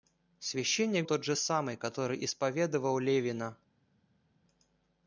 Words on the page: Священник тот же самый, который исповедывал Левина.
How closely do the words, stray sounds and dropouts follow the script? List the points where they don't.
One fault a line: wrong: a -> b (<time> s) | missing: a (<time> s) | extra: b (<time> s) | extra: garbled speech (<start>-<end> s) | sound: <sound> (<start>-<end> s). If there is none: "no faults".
no faults